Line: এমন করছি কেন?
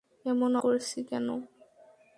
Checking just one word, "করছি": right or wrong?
right